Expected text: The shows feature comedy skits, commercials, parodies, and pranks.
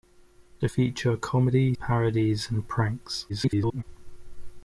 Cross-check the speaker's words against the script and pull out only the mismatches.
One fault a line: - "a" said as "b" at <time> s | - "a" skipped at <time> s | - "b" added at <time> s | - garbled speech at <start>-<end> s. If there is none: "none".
- "shows" skipped at 0.7 s
- "skits commercials" skipped at 1.7 s
- garbled speech at 3.3-3.8 s